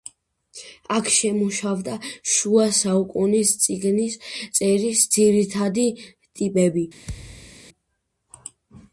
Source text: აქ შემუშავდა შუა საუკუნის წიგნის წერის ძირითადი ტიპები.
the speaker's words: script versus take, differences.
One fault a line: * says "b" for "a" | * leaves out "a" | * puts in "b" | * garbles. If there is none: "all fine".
all fine